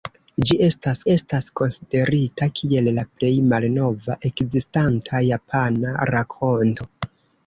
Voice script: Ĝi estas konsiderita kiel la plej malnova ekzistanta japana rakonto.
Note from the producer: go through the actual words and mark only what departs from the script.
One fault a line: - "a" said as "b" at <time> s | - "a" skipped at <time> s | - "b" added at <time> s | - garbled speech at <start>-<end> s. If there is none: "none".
- "estas" added at 1.1 s